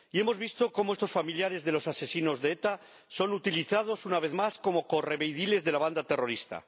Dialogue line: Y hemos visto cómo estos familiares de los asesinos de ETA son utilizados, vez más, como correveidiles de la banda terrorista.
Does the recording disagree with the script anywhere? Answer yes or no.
yes